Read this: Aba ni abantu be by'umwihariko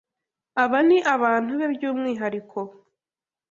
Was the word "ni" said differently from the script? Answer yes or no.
no